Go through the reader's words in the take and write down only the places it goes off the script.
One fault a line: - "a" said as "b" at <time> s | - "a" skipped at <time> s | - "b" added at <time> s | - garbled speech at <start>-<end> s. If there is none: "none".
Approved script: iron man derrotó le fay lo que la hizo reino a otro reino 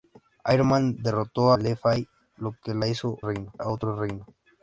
none